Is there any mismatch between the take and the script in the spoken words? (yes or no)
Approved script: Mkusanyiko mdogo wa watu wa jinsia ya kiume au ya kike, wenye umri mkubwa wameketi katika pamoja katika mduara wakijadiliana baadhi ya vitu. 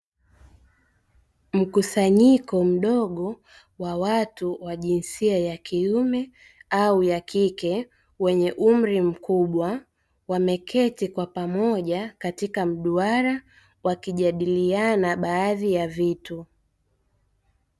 yes